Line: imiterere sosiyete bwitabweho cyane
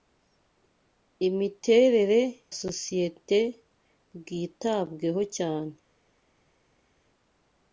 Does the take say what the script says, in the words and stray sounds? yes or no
yes